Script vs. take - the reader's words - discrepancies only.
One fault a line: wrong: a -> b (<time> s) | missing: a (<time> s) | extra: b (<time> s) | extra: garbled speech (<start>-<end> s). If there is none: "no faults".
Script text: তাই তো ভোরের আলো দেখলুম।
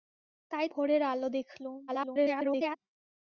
missing: তো (0.7 s)
extra: garbled speech (1.9-2.8 s)